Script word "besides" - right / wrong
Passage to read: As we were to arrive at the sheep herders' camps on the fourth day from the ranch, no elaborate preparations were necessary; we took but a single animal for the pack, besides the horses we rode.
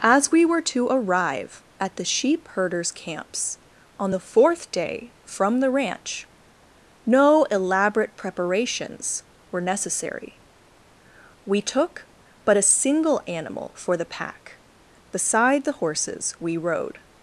wrong